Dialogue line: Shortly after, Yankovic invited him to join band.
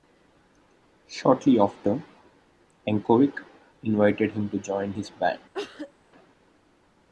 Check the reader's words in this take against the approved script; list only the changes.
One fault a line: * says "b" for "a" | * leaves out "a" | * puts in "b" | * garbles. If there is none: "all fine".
* puts in "his"